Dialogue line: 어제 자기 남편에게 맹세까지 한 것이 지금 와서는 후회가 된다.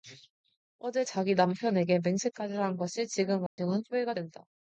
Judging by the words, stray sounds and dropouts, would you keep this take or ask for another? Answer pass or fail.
fail